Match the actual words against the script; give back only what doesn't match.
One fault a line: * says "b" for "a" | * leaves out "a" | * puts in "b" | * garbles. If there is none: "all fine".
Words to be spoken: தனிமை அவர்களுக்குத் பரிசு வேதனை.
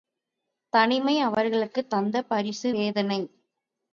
* puts in "தந்த"